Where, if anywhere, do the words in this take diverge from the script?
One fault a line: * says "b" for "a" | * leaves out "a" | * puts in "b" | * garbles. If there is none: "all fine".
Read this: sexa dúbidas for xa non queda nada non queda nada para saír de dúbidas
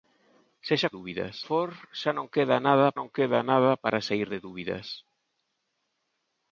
all fine